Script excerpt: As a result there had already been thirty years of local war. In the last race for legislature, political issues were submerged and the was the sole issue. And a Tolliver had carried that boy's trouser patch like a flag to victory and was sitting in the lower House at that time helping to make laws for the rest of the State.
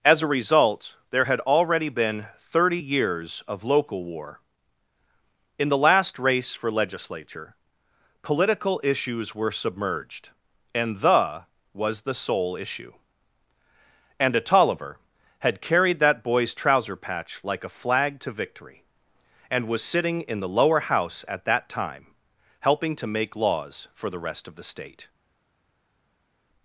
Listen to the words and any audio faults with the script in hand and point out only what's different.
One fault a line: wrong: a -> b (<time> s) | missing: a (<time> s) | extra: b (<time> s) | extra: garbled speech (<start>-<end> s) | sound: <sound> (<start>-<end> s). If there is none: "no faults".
no faults